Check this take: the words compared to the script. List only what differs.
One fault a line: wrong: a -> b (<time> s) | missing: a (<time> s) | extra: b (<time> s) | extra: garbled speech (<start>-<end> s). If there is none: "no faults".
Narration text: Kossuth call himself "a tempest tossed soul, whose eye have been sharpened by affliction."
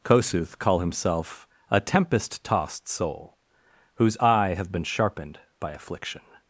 no faults